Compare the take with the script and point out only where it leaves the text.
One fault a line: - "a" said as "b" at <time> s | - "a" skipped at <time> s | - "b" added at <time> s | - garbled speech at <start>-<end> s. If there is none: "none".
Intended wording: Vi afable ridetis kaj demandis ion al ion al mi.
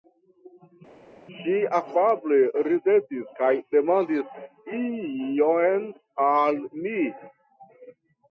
- "Vi" said as "Ŝi" at 1.4 s
- "ion al" skipped at 6.6 s